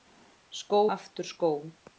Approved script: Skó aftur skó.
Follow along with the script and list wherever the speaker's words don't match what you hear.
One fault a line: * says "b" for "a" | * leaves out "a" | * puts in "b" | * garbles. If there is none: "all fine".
all fine